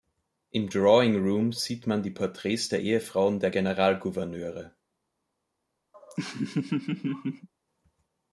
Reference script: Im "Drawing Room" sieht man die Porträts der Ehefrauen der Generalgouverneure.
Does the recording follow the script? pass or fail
pass